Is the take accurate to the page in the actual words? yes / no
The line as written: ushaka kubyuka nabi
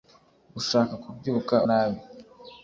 yes